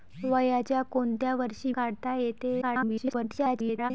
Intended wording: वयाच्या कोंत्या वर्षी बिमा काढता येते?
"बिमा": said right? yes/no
no